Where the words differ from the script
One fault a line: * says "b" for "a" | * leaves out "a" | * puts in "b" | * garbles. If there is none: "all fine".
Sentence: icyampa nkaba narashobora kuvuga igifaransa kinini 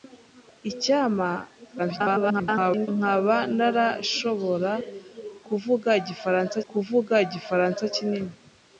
* garbles
* puts in "kuvuga igifaransa"